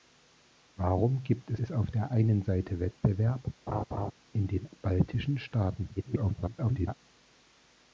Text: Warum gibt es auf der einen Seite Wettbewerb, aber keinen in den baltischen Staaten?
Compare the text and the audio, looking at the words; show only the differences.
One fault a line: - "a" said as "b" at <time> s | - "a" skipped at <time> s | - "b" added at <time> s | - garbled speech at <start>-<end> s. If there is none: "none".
- "es" added at 1.6 s
- "aber keinen" skipped at 3.5 s
- garbled speech at 6.0-6.9 s